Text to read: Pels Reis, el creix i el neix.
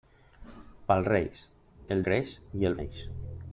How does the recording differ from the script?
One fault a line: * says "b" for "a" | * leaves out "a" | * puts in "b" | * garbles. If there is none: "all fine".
all fine